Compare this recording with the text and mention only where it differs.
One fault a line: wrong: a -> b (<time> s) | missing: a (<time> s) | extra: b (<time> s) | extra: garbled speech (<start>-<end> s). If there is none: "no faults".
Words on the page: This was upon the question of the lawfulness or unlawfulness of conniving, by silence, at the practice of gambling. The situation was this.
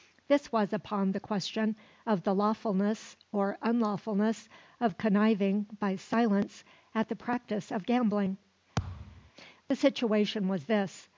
no faults